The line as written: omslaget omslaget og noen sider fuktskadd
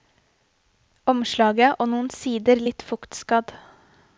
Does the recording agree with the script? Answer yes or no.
no